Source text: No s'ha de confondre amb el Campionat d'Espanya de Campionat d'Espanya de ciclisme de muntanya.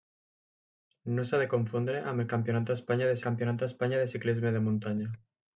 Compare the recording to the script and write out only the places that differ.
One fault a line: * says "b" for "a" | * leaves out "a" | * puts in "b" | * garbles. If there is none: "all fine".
all fine